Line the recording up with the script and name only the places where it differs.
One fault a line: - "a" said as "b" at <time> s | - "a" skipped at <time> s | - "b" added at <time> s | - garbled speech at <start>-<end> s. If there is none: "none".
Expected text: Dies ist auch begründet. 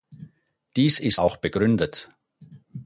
none